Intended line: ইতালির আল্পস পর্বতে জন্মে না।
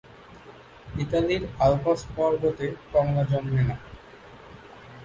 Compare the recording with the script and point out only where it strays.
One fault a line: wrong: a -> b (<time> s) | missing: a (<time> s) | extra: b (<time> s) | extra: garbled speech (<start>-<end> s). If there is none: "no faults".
extra: কমলা (2.9 s)